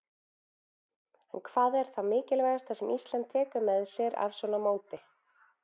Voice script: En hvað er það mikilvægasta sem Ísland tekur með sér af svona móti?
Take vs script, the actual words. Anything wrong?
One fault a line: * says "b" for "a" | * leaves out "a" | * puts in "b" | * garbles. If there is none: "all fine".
all fine